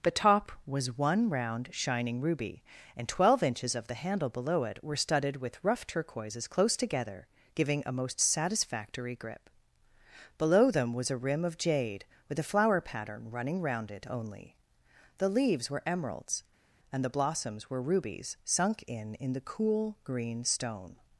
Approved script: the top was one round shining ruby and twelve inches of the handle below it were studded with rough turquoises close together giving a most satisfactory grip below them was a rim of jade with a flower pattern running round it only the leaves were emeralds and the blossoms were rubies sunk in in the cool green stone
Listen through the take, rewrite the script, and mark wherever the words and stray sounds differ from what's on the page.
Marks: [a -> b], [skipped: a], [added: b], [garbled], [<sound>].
the top was one round shining ruby and twelve inches of the handle below it were studded with rough turquoises close together giving a most satisfactory grip below them was a rim of jade with a flower pattern running round it only the leaves were emeralds and the blossoms were rubies sunk in in the cool green stone